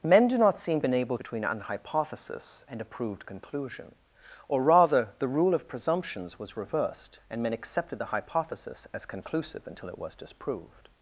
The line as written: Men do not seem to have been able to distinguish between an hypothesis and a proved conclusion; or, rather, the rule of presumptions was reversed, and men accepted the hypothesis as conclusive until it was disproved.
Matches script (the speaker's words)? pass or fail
fail